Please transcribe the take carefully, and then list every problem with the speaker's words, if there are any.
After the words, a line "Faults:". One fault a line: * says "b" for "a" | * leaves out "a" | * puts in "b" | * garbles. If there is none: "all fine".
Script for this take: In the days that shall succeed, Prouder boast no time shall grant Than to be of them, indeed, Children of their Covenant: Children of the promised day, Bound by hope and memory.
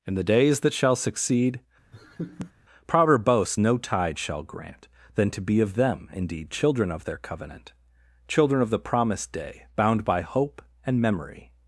In the days that shall succeed, Prouder boast no tide shall grant Than to be of them, indeed, Children of their Covenant: Children of the promised day, Bound by hope and memory.
Faults:
* says "tide" for "time"